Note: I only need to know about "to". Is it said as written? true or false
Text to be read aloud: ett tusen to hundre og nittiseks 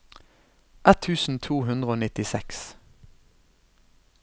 true